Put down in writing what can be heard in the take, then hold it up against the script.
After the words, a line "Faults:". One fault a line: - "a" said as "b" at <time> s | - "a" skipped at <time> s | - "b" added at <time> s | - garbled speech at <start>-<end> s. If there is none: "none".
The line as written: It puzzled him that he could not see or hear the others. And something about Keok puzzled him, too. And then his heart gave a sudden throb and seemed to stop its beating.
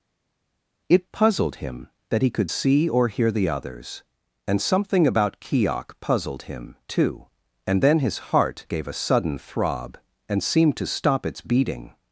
It puzzled him that he could see or hear the others. And something about Keok puzzled him, too. And then his heart gave a sudden throb and seemed to stop its beating.
Faults:
- "not" skipped at 2.5 s